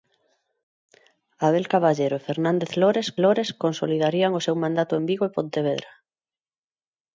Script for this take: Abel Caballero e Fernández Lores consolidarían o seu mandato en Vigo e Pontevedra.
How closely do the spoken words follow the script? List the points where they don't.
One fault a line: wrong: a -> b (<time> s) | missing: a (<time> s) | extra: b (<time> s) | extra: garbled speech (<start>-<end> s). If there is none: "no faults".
extra: Lores (3.2 s)